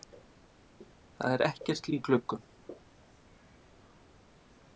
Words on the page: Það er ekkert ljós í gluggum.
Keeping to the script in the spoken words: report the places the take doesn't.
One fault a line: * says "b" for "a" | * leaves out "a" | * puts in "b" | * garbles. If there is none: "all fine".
* leaves out "ljós"